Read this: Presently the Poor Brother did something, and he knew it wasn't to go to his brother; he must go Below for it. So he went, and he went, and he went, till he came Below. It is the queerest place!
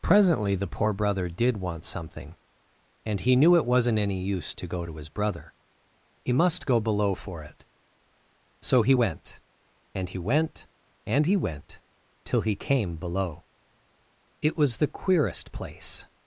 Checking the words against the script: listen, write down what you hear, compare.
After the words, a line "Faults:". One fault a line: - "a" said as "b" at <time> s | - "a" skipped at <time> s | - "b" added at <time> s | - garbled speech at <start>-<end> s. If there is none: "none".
Presently the Poor Brother did want something, and he knew it wasn't any use to go to his brother; he must go Below for it. So he went, and he went, and he went, till he came Below. It was the queerest place!
Faults:
- "want" added at 1.6 s
- "any use" added at 4.0 s
- "is" said as "was" at 14.6 s